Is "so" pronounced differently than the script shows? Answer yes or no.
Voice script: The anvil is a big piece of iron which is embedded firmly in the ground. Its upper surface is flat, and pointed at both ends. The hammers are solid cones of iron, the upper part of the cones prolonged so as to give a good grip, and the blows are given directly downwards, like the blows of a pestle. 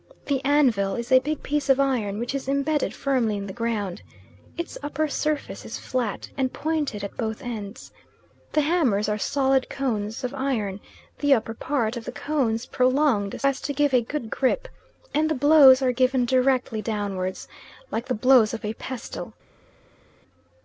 yes